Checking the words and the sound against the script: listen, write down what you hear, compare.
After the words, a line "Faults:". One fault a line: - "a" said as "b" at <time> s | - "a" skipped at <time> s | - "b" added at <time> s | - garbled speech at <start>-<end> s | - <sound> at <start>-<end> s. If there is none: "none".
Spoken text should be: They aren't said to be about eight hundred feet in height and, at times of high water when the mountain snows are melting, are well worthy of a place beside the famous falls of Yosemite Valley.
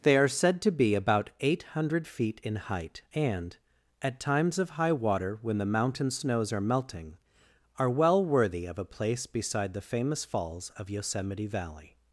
They are said to be about eight hundred feet in height and, at times of high water when the mountain snows are melting, are well worthy of a place beside the famous falls of Yosemite Valley.
Faults:
- "aren't" said as "are" at 0.2 s